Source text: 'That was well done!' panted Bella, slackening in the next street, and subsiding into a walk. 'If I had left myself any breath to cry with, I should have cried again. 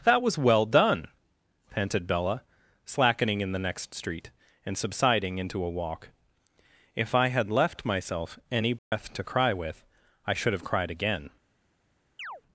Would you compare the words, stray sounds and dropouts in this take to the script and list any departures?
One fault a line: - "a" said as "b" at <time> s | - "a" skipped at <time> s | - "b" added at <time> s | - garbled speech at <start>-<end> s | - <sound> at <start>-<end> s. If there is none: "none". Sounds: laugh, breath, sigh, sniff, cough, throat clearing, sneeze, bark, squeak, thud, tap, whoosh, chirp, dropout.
- dropout at 8.8-8.9 s
- chirp at 12.2-12.4 s